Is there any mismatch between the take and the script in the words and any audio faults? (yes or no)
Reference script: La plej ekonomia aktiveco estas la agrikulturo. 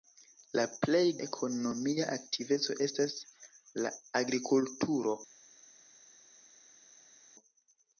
no